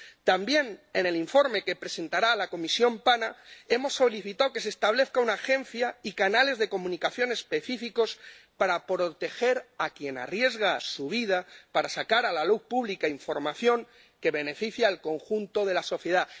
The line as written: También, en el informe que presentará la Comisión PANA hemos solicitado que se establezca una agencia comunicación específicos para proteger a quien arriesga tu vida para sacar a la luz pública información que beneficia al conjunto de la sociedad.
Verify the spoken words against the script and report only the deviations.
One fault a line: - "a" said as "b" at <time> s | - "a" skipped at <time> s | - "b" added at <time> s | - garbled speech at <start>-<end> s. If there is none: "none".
- "y canales de" added at 6.0 s
- "tu" said as "su" at 10.8 s